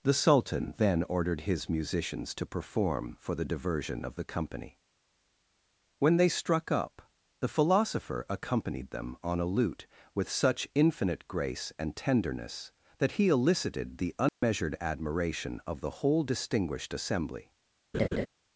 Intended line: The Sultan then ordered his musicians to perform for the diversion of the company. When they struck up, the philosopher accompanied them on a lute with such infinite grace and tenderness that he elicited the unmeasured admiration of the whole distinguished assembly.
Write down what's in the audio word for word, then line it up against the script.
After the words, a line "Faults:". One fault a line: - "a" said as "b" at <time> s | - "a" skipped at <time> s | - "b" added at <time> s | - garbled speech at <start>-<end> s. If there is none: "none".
The Sultan then ordered his musicians to perform for the diversion of the company. When they struck up, the philosopher accompanied them on a lute with such infinite grace and tenderness that he elicited the unmeasured admiration of the whole distinguished assembly.
Faults:
none